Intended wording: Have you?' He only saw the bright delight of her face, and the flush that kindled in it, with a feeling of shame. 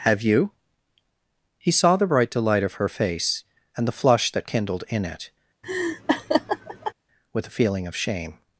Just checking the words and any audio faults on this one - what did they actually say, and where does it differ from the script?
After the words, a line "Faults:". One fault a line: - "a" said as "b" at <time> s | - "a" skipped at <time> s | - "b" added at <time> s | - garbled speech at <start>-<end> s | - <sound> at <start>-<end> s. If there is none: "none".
Have you?' He saw the bright delight of her face, and the flush that kindled in it, with a feeling of shame.
Faults:
- "only" skipped at 1.7 s
- laugh at 5.6-6.9 s